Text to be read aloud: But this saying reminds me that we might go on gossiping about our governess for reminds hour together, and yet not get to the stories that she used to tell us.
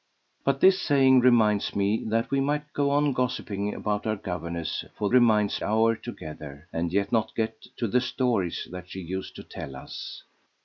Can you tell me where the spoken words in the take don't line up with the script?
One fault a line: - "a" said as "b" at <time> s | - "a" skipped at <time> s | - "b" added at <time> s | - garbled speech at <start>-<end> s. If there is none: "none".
none